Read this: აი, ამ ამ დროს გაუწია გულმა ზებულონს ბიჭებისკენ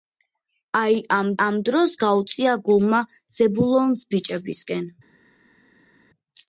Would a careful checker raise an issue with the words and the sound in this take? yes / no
no